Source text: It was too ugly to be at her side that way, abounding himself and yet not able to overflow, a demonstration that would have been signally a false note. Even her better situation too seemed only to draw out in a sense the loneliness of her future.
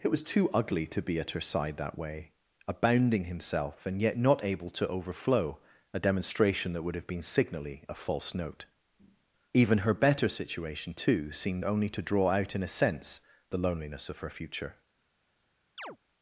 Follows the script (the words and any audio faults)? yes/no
no